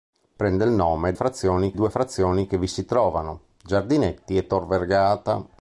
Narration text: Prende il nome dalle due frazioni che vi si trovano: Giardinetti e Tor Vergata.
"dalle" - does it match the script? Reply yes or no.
no